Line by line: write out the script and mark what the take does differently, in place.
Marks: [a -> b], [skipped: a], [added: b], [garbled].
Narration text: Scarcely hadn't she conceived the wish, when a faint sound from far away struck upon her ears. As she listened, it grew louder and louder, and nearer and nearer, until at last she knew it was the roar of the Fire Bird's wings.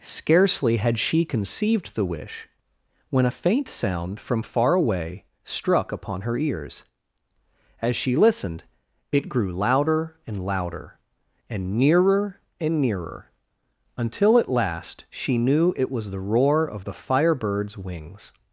Scarcely [hadn't -> had] she conceived the wish, when a faint sound from far away struck upon her ears. As she listened, it grew louder and louder, and nearer and nearer, until at last she knew it was the roar of the Fire Bird's wings.